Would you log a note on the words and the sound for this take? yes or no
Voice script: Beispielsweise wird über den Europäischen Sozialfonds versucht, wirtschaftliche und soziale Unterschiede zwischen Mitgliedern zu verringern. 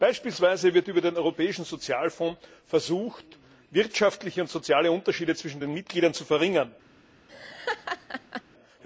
yes